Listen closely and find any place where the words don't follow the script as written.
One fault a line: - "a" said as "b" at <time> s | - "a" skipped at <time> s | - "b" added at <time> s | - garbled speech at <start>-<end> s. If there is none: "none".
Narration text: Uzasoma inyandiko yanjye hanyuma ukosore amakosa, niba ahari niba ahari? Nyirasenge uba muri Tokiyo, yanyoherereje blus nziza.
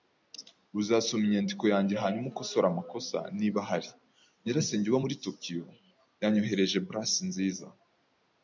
- "niba ahari" skipped at 3.9 s